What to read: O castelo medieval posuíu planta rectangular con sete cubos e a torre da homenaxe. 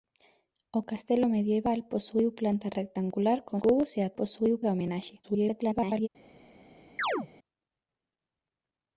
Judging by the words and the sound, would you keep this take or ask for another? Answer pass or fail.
fail